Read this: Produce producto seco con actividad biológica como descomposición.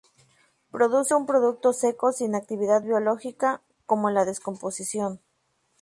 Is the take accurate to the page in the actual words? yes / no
no